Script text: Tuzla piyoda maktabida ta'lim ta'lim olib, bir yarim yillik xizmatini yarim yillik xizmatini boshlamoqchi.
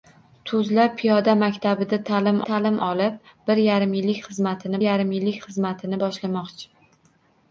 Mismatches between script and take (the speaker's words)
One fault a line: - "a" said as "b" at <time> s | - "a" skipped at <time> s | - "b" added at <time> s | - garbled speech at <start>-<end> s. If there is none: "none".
none